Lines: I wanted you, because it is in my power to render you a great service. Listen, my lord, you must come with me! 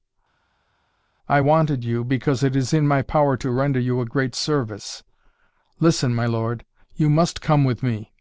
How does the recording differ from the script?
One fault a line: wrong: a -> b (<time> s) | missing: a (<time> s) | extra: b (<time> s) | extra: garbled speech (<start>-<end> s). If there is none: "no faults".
no faults